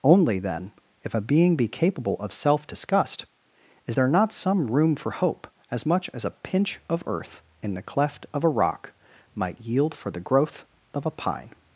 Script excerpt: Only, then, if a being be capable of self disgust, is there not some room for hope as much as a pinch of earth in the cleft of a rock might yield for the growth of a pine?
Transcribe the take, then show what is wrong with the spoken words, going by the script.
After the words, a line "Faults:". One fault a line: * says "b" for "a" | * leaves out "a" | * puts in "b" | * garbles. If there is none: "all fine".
Only, then, if a being be capable of self disgust, is there not some room for hope as much as a pinch of earth in the cleft of a rock might yield for the growth of a pine?
Faults:
all fine